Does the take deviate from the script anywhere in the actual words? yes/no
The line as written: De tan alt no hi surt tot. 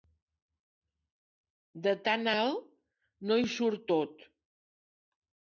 no